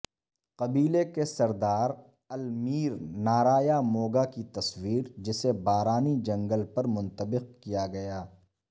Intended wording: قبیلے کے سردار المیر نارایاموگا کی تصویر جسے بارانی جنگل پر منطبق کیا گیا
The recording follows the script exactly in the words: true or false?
true